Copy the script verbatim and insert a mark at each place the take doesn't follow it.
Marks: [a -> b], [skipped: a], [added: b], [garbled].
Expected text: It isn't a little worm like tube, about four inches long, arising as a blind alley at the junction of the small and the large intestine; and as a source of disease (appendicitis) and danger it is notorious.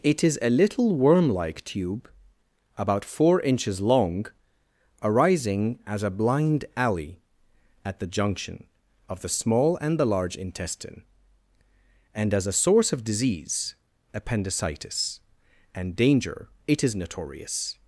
It [isn't -> is] a little worm like tube, about four inches long, arising as a blind alley at the junction of the small and the large intestine; and as a source of disease (appendicitis) and danger it is notorious.